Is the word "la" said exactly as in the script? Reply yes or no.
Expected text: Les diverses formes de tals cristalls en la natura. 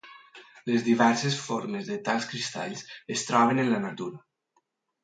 yes